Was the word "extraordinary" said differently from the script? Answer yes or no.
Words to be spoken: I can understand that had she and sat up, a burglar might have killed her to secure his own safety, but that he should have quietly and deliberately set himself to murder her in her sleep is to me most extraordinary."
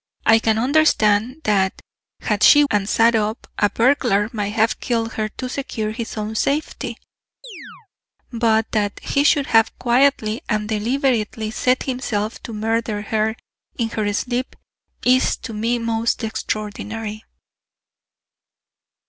no